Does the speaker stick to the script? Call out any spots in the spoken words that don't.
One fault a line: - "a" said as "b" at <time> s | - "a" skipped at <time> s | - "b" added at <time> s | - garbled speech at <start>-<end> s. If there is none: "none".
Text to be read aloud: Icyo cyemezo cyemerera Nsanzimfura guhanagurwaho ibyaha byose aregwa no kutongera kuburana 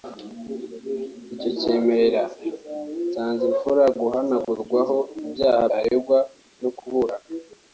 - "cyemezo" skipped at 1.5 s
- "byose" skipped at 5.6 s
- "kutongera" skipped at 6.7 s